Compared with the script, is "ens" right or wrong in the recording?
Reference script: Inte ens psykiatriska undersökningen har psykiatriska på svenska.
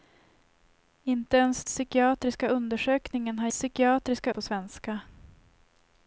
right